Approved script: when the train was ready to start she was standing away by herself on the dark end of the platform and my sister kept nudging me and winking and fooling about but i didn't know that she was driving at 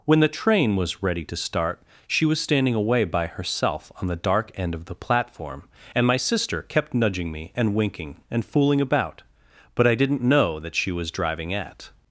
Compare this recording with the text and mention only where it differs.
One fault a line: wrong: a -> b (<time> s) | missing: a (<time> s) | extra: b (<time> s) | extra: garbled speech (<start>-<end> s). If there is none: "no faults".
no faults